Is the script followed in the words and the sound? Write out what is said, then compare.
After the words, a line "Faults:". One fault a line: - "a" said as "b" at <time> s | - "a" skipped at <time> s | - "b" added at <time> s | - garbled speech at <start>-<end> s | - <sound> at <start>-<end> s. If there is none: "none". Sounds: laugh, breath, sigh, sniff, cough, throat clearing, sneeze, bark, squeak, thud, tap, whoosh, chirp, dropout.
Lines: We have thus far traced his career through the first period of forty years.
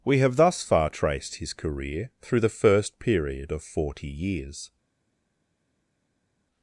We have thus far traced his career through the first period of forty years.
Faults:
none